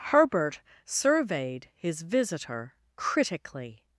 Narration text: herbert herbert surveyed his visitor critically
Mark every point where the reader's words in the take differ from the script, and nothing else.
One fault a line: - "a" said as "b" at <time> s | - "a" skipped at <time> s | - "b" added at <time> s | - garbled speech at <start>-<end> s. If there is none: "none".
- "herbert" skipped at 0.6 s